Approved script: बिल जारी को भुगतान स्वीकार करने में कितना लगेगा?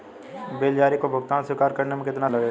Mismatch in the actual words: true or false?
false